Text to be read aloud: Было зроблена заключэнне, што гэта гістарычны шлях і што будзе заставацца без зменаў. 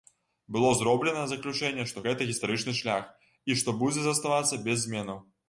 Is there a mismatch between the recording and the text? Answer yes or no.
no